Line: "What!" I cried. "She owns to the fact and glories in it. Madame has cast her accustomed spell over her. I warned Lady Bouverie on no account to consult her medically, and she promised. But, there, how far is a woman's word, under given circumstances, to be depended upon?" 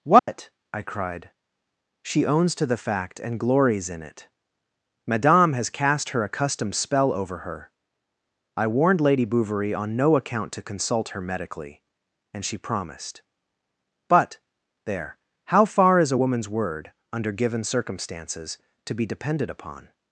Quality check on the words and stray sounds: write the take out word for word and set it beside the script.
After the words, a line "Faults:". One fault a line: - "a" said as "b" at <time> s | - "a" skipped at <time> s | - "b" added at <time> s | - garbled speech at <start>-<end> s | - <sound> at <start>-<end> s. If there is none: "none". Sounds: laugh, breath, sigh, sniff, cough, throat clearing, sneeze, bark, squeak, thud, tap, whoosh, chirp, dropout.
"What!" I cried. "She owns to the fact and glories in it. Madame has cast her accustomed spell over her. I warned Lady Bouverie on no account to consult her medically, and she promised. But, there, how far is a woman's word, under given circumstances, to be depended upon?"
Faults:
- dropout at 0.2-0.3 s